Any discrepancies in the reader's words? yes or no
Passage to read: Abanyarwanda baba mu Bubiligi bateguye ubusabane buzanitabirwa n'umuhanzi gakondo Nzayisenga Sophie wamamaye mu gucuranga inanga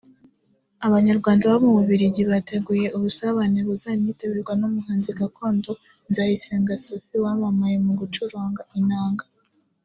no